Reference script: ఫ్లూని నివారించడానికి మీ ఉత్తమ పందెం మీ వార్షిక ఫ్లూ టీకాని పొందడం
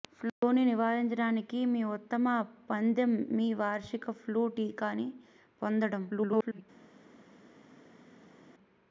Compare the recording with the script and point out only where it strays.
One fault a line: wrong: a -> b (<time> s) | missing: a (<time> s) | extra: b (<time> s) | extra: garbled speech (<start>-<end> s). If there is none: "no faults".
extra: garbled speech (6.1-6.6 s)